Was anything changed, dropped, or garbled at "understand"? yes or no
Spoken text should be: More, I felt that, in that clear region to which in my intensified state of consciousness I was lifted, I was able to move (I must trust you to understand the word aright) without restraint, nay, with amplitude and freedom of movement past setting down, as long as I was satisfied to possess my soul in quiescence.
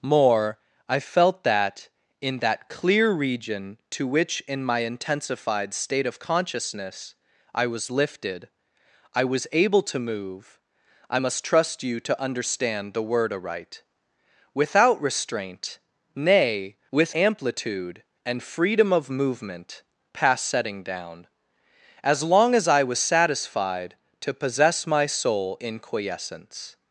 no